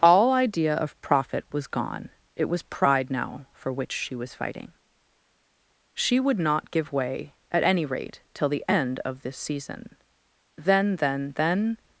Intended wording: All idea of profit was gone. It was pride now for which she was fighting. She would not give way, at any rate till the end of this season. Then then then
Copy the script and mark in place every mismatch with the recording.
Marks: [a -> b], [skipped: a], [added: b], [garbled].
All idea of profit was gone. It was pride now for which she was fighting. She would not give way, at any rate till the end of this season. Then then then